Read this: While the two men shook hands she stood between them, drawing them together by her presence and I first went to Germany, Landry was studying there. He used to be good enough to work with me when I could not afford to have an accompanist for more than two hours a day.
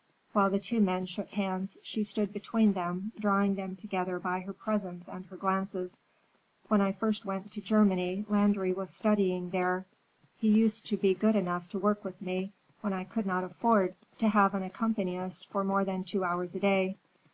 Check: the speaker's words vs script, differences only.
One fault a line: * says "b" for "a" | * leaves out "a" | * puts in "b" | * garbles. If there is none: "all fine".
* puts in "her glances When"